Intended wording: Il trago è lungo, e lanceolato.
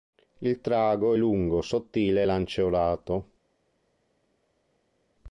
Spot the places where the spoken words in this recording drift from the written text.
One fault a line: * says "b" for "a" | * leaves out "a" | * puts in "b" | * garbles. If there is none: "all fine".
* puts in "sottile"